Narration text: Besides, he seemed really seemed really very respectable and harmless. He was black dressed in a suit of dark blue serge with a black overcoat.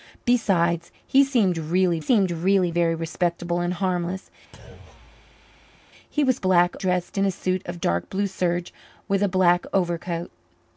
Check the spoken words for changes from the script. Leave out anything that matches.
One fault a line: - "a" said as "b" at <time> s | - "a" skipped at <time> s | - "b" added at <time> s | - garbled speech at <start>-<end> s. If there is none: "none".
none